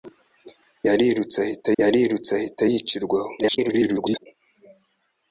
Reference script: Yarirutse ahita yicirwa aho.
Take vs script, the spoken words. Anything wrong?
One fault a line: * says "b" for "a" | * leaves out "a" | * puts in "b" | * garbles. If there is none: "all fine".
* puts in "yarirutse ahita"
* garbles